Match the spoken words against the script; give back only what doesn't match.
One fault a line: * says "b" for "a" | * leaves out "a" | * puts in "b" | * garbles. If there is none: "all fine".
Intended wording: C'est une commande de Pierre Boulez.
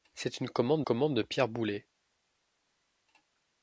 * puts in "commande"